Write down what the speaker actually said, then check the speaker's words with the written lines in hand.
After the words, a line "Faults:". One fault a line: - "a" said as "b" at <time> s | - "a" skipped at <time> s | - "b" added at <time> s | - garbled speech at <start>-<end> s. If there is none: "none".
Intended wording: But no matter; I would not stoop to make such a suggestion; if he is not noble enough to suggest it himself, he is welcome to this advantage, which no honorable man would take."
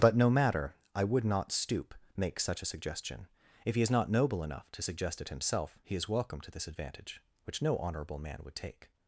But no matter; I would not stoop make such a suggestion; if he is not noble enough to suggest it himself, he is welcome to this advantage, which no honorable man would take."
Faults:
- "to" skipped at 1.9 s